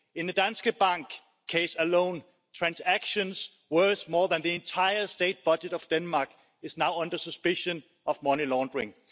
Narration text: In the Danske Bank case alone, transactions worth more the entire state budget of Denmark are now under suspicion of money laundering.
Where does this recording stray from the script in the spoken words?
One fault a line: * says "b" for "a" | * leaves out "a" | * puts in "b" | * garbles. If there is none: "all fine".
* puts in "than"